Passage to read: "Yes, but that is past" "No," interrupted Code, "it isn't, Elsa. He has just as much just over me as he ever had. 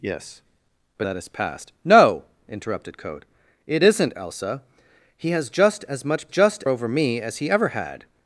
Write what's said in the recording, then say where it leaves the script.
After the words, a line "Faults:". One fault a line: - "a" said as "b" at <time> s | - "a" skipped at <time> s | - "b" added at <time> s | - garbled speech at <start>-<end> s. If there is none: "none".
"Yes, but that is past" "No," interrupted Code, "it isn't, Elsa. He has just as much just over me as he ever had.
Faults:
none